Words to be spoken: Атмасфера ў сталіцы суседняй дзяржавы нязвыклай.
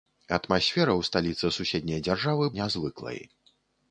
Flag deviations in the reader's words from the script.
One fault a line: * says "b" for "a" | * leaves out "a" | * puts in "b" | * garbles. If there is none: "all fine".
all fine